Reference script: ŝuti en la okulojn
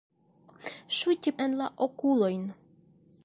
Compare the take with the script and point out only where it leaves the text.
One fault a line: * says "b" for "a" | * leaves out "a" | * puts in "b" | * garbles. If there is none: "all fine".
all fine